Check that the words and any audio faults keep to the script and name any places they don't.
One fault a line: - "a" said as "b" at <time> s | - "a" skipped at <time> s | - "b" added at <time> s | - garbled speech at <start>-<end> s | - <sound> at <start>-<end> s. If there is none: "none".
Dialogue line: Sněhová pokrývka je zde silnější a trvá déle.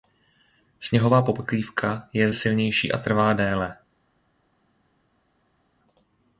- "zde" skipped at 2.3 s